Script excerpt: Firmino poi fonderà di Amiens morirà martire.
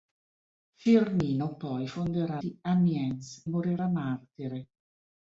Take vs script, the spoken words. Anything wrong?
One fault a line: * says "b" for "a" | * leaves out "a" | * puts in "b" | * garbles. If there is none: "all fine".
all fine